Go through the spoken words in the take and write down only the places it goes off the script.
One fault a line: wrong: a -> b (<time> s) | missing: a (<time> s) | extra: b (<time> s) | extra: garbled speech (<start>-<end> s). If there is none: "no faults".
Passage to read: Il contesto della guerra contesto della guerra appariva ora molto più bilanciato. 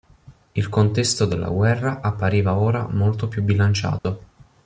missing: contesto della guerra (2.0 s)